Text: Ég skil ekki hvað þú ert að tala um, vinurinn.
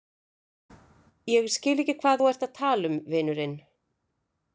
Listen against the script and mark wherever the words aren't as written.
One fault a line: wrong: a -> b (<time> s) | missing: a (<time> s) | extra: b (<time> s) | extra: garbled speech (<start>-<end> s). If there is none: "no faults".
no faults